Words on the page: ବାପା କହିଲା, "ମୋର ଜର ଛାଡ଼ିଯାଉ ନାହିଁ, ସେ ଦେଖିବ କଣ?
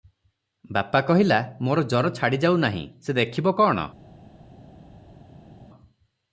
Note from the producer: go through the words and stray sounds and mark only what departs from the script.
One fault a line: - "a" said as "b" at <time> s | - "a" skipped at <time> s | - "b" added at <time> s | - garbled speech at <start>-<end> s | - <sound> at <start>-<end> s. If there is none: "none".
none